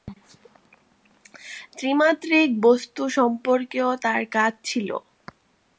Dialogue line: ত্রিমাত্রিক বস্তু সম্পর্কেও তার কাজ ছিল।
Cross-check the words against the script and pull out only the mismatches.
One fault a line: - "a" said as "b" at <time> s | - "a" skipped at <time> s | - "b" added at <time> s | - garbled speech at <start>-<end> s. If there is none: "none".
none